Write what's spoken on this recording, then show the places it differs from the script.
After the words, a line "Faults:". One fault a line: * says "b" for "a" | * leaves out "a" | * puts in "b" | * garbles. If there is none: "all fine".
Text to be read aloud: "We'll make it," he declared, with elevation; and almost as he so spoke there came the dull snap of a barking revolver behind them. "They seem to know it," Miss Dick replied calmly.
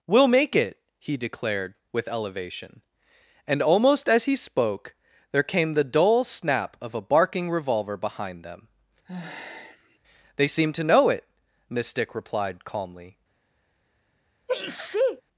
"We'll make it," he declared, with elevation; and almost as he spoke there came the dull snap of a barking revolver behind them. "They seem to know it," Miss Dick replied calmly.
Faults:
* leaves out "so"